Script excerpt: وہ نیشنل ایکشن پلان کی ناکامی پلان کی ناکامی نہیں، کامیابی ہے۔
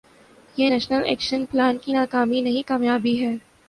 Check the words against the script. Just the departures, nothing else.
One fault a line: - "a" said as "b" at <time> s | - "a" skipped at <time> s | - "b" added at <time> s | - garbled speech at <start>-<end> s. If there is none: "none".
- "وہ" said as "یہ" at 0.6 s
- "پلان کی ناکامی" skipped at 2.4 s